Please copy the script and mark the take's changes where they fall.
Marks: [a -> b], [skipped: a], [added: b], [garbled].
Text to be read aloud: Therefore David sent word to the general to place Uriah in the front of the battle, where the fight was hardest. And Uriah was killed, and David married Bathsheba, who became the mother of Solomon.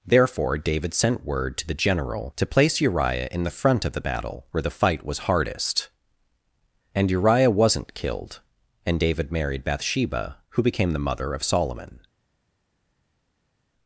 Therefore David sent word to the general to place Uriah in the front of the battle, where the fight was hardest. And Uriah [was -> wasn't] killed, and David married Bathsheba, who became the mother of Solomon.